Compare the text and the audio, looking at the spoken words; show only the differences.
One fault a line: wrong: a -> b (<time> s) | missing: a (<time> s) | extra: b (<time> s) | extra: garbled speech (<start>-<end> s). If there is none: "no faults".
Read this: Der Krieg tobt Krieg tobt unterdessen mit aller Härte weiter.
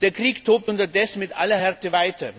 missing: Krieg tobt (0.7 s)